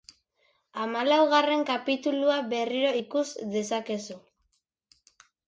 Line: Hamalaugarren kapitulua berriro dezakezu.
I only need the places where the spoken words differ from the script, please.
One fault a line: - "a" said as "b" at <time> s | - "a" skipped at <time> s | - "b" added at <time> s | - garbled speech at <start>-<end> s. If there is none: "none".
- "ikus" added at 3.0 s